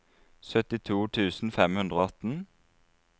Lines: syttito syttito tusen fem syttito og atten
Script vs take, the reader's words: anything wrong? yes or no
yes